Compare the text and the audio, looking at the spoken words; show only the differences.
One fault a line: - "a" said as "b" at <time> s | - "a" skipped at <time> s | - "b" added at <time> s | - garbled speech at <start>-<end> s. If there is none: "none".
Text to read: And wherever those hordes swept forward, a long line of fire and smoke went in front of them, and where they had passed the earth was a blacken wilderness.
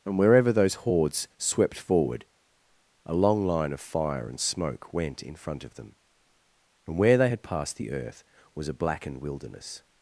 - "blacken" said as "blackened" at 8.7 s